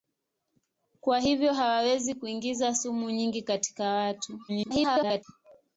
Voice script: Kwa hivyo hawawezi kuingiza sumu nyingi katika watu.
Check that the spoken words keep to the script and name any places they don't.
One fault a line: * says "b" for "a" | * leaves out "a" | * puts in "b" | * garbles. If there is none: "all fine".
* garbles